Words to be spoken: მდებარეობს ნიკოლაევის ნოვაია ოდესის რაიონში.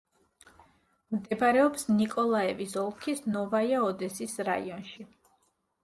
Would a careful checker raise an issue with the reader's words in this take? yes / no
yes